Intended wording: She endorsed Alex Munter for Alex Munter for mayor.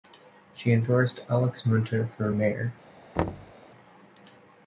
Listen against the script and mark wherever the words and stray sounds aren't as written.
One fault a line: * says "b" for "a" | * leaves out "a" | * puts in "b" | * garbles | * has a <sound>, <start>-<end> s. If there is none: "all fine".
* leaves out "Alex Munter for"
* has a thud, 3.2-3.5 s